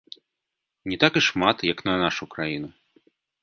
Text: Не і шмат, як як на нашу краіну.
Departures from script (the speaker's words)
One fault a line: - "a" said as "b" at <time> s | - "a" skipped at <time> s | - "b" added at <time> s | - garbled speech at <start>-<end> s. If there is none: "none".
- "так" added at 1.0 s
- "як" skipped at 1.9 s